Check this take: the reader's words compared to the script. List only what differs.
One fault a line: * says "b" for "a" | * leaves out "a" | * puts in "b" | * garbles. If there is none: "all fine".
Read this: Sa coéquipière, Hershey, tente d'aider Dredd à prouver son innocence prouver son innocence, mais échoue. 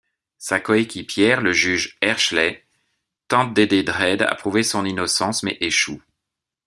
* puts in "le Juge"
* leaves out "prouver son innocence"